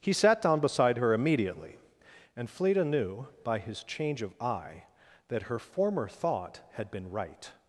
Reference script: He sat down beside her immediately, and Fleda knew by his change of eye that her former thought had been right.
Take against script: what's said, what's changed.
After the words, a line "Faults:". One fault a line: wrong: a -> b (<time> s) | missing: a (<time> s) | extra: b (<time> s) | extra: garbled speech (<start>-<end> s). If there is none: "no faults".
He sat down beside her immediately, and Fleda knew by his change of eye that her former thought had been right.
Faults:
no faults